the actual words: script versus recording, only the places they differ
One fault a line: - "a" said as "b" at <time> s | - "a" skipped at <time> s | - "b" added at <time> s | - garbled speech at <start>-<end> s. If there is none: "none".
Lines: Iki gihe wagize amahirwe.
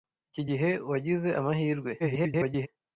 - garbled speech at 2.0-2.7 s